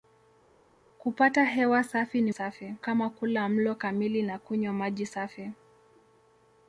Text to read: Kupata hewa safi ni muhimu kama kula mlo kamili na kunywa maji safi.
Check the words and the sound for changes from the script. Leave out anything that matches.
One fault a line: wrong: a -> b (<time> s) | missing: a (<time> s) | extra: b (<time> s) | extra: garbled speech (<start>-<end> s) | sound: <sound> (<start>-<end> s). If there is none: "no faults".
wrong: muhimu -> safi (2.3 s)